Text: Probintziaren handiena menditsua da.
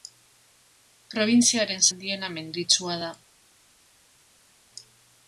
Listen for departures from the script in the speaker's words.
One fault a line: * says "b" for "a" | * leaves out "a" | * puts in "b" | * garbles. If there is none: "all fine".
all fine